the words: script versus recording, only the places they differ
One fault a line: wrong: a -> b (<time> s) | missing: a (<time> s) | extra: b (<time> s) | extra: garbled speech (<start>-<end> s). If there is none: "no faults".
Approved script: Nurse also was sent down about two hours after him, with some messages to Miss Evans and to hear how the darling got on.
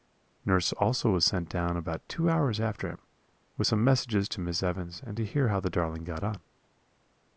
no faults